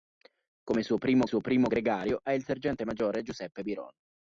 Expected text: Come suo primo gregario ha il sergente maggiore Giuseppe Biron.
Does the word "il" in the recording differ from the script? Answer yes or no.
no